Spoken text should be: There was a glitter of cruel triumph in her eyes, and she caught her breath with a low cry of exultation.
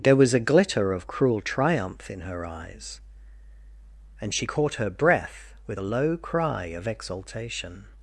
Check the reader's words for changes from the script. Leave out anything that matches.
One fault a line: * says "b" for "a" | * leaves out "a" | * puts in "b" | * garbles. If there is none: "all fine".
all fine